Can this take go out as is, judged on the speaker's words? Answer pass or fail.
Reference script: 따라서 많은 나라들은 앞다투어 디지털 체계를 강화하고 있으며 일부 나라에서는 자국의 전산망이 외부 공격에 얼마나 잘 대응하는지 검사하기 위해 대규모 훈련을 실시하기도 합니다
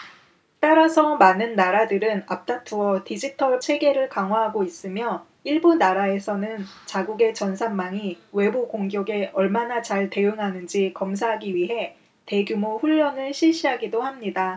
pass